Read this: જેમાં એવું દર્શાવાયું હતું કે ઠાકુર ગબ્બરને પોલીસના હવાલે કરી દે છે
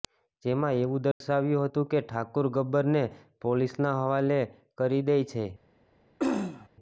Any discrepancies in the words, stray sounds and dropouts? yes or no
yes